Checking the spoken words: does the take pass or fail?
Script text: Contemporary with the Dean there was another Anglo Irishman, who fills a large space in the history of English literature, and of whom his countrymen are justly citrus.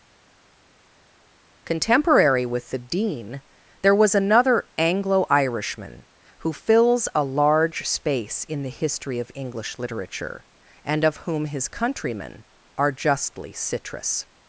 pass